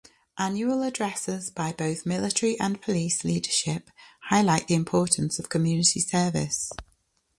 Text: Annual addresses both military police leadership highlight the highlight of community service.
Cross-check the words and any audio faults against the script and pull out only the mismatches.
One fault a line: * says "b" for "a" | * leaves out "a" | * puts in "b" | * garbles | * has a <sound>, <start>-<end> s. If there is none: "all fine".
* puts in "by"
* puts in "and"
* says "importance" for "highlight"